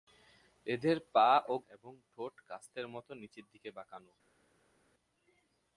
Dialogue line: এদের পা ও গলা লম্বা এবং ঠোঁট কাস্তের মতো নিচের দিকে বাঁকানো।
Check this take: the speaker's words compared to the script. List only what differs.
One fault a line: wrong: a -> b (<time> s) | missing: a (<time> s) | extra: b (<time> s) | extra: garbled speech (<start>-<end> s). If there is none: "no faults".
missing: গলা লম্বা (1.5 s)